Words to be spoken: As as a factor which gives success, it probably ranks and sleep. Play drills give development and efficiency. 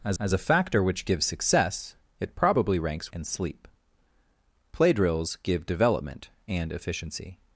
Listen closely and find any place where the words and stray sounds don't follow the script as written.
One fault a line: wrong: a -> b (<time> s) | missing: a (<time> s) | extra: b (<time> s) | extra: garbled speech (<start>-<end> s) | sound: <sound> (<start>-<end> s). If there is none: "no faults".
no faults